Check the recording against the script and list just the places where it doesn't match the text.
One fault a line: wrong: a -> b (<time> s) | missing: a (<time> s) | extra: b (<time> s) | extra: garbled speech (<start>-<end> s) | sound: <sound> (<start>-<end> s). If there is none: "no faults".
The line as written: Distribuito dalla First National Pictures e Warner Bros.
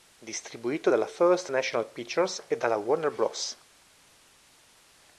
extra: dalla (2.6 s)